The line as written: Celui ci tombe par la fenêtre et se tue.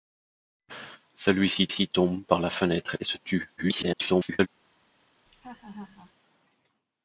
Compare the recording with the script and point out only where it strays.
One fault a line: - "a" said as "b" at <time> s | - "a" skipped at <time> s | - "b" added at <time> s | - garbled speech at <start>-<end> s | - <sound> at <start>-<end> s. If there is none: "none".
- "ci" added at 1.7 s
- garbled speech at 3.6-4.5 s
- laugh at 5.3-6.1 s